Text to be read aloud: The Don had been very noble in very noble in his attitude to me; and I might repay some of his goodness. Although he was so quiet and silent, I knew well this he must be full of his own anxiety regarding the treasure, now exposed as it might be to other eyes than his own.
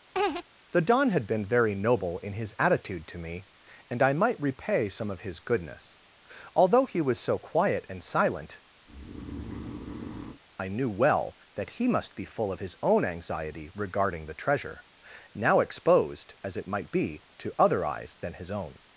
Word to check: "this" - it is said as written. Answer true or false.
false